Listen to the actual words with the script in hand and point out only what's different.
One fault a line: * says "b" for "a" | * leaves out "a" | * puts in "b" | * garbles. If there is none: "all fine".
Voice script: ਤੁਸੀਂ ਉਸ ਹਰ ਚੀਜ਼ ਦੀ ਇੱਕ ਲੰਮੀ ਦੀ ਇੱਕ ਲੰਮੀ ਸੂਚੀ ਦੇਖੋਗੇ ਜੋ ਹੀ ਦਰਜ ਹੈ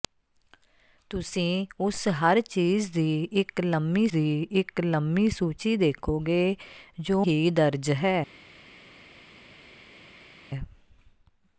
all fine